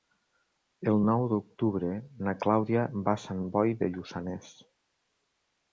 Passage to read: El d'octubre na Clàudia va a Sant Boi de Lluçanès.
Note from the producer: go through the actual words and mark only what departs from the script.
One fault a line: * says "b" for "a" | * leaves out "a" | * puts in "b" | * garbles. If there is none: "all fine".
* puts in "nou"